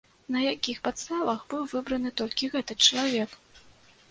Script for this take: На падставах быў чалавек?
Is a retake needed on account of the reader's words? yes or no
yes